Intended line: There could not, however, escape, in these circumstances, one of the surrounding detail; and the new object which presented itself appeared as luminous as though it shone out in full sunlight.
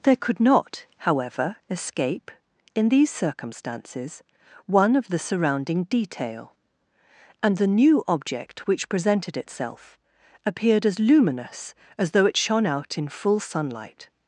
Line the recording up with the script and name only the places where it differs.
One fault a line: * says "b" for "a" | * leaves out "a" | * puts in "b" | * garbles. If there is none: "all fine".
all fine